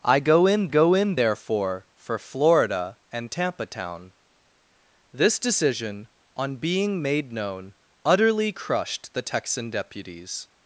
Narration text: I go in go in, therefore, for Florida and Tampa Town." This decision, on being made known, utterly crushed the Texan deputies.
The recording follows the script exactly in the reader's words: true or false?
true